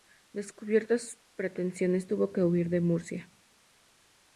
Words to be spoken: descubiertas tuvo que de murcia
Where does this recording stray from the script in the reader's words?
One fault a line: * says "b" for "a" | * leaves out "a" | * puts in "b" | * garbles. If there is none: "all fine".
* puts in "sus pretensiones"
* puts in "huir"